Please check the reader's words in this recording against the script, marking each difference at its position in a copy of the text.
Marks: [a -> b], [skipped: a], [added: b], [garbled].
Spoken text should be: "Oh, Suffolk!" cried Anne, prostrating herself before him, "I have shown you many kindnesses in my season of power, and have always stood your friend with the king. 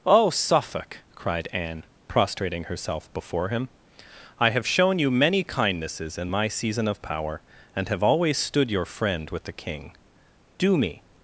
"Oh, Suffolk!" cried Anne, prostrating herself before him, "I have shown you many kindnesses in my season of power, and have always stood your friend with the king. [added: Do me]